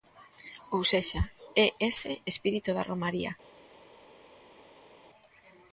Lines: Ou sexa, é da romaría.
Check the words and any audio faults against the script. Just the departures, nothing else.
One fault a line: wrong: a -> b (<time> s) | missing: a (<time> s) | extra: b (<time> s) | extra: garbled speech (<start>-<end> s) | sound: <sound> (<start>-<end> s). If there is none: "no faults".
extra: ese espírito (1.9 s)